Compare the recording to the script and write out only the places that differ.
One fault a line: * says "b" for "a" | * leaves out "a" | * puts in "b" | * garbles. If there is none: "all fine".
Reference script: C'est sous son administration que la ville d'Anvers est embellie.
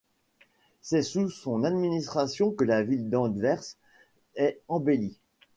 all fine